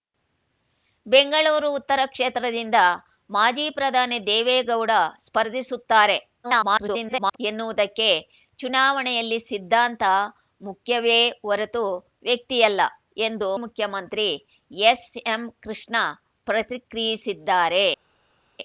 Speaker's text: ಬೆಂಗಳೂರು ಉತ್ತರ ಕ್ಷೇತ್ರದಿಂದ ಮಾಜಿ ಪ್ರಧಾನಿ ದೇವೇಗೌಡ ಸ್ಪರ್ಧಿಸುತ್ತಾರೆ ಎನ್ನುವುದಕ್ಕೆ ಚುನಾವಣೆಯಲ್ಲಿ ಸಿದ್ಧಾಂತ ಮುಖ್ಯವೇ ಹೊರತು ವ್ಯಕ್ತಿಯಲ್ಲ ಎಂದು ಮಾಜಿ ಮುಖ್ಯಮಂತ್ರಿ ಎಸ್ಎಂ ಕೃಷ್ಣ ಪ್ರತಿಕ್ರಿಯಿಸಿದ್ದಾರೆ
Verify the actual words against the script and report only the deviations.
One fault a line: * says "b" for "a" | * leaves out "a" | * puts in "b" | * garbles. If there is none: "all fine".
* garbles
* leaves out "ಮಾಜಿ"